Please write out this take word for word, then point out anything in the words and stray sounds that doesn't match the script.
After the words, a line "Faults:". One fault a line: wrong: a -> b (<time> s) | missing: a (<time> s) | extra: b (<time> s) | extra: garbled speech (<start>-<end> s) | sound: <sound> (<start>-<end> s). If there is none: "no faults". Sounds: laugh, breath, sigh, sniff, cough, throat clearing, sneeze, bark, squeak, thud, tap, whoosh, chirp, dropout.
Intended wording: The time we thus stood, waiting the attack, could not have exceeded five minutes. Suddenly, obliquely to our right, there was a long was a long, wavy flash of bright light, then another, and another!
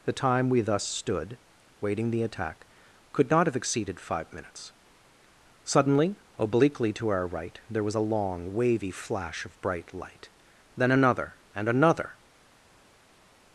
The time we thus stood, waiting the attack, could not have exceeded five minutes. Suddenly, obliquely to our right, there was a long, wavy flash of bright light, then another, and another!
Faults:
missing: was a long (8.5 s)